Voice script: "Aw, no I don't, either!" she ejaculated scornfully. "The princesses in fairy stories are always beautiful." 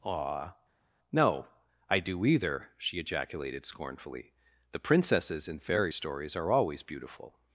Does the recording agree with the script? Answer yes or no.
no